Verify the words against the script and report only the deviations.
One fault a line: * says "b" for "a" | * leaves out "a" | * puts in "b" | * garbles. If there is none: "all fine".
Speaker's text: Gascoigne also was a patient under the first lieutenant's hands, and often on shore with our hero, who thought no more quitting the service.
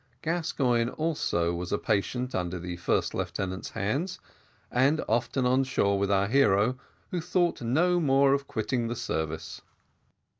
* puts in "of"